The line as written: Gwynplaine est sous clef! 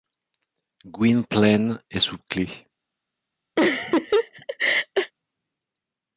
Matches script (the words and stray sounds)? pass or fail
fail